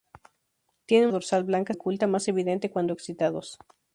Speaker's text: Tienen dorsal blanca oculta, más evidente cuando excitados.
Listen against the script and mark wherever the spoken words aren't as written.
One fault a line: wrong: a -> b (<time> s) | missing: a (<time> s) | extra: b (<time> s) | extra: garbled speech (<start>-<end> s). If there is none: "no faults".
no faults